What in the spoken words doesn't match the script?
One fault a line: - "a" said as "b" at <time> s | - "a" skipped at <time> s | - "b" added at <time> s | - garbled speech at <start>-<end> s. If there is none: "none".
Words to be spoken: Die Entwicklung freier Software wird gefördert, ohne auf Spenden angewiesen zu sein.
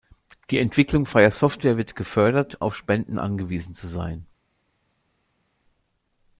- "ohne" skipped at 2.6 s